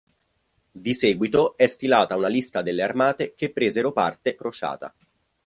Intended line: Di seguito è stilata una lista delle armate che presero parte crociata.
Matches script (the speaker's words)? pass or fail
pass